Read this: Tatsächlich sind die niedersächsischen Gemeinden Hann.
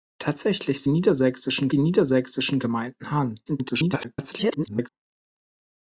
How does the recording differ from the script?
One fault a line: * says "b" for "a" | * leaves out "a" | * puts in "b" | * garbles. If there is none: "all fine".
* says "niedersächsischen" for "sind"
* garbles